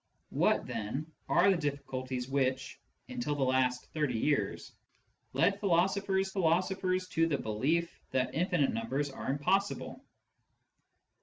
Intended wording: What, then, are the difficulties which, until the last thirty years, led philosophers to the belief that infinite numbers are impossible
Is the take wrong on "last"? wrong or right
right